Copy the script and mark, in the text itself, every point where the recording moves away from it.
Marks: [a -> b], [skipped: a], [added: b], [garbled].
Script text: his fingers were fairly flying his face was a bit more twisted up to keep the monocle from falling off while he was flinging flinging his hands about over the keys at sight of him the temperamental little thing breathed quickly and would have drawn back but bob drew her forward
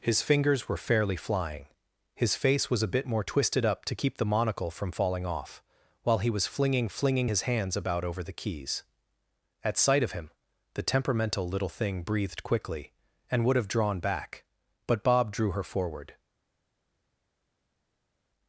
his fingers were fairly flying his face was a bit more twisted up to keep the monocle from falling off while he was flinging flinging his hands about over the keys at sight of him the temperamental little thing breathed quickly and would have drawn back but bob drew her forward